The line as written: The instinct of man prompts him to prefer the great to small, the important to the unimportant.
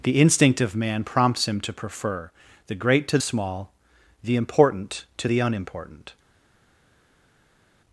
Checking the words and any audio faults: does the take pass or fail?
pass